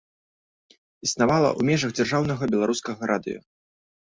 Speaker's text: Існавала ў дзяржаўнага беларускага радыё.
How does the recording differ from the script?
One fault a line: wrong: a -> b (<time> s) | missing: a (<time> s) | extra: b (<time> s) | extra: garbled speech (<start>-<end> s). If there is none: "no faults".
extra: межах (1.7 s)